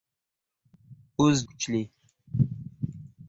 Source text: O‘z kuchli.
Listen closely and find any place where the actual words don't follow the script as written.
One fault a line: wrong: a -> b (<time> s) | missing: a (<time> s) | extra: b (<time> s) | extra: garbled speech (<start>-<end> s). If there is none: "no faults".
no faults